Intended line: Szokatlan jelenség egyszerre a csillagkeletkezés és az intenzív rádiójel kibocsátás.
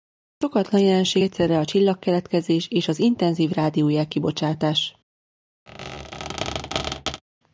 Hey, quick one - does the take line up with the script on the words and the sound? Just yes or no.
no